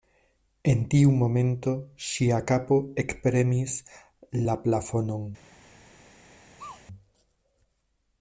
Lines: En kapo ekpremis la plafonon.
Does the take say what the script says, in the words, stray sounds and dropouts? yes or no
no